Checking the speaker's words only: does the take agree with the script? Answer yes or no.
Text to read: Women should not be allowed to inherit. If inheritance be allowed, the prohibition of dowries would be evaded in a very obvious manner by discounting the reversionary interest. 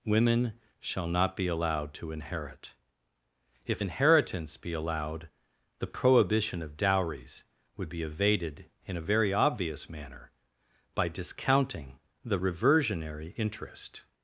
no